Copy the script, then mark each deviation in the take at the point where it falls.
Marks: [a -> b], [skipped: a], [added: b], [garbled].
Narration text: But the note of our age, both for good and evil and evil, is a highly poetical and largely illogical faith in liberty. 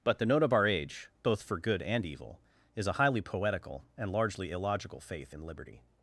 But the note of our age, both for good and evil [skipped: and evil,] is a highly poetical and largely illogical faith in liberty.